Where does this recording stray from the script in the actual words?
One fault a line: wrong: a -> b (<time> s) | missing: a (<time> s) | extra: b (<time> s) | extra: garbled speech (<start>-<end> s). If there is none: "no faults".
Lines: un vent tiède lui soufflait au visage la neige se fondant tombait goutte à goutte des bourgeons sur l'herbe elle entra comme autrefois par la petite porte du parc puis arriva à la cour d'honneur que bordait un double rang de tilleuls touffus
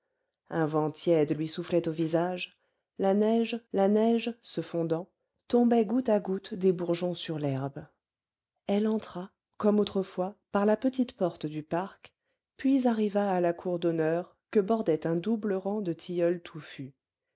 extra: la neige (3.7 s)